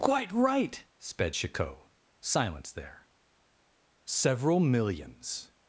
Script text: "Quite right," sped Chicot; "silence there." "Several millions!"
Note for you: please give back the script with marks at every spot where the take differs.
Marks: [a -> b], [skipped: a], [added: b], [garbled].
"Quite right," sped Chicot; "silence there." "Several millions!"